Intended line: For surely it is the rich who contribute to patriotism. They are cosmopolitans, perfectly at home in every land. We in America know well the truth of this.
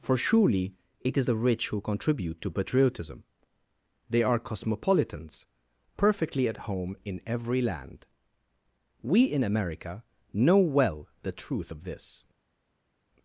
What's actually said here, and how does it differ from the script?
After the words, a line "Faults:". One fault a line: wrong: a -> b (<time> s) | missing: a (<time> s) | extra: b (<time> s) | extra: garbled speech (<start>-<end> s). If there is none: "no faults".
For surely it is the rich who contribute to patriotism. They are cosmopolitans, perfectly at home in every land. We in America know well the truth of this.
Faults:
no faults